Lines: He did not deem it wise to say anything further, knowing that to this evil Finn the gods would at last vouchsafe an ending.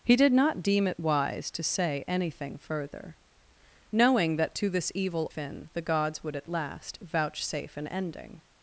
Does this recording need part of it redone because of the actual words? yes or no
no